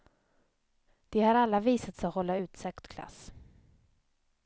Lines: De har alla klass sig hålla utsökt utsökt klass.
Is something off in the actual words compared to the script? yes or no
yes